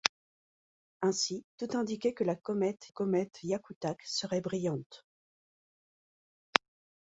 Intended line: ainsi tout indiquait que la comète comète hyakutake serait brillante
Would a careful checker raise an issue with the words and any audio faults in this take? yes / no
no